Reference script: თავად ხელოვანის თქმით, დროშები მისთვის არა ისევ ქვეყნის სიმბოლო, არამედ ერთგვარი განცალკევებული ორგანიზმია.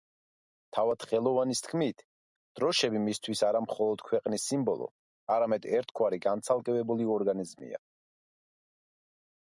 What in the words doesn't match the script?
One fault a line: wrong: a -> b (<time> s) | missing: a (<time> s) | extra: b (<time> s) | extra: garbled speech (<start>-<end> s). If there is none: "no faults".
wrong: ისევ -> მხოლოდ (3.7 s)